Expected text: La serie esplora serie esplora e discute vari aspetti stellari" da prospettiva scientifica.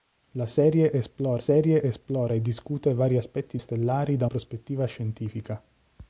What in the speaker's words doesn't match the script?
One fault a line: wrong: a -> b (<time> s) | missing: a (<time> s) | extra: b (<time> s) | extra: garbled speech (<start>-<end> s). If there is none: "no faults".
no faults